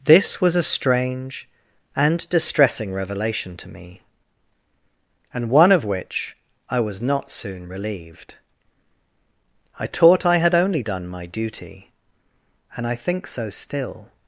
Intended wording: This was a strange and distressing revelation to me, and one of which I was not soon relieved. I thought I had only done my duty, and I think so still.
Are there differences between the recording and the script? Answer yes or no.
yes